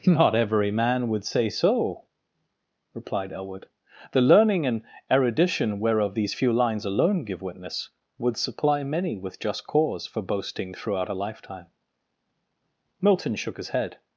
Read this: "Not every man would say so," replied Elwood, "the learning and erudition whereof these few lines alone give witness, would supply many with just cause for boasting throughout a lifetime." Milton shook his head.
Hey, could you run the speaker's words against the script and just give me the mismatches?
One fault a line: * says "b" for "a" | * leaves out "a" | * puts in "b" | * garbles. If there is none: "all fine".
all fine